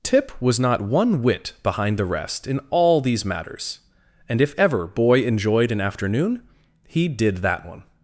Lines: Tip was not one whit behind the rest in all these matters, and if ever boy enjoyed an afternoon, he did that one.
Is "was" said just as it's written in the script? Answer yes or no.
yes